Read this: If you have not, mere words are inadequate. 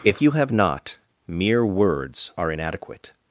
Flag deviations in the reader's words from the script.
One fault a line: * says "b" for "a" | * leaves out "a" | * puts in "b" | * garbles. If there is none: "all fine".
all fine